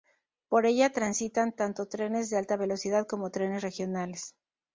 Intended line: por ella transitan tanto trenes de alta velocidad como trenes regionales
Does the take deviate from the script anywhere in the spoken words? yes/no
no